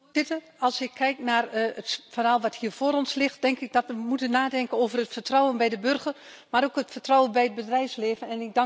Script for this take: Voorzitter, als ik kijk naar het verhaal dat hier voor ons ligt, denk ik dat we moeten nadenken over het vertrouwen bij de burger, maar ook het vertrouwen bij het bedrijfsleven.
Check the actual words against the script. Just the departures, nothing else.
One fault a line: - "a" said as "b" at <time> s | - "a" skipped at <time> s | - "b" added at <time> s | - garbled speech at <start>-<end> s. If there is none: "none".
none